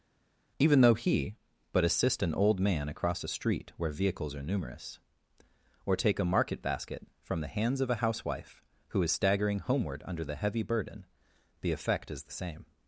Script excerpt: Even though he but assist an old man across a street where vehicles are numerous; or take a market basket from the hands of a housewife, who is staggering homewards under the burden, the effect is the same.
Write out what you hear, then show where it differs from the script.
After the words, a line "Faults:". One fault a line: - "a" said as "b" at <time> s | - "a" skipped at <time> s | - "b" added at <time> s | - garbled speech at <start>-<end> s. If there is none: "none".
Even though he but assist an old man across a street where vehicles are numerous; or take a market basket from the hands of a housewife, who is staggering homeward under the heavy burden, the effect is the same.
Faults:
- "homewards" said as "homeward" at 9.6 s
- "heavy" added at 10.4 s